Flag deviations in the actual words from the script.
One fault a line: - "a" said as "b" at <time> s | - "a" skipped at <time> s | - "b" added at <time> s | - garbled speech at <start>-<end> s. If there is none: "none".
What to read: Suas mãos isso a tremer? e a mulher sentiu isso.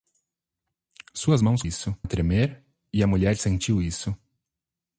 none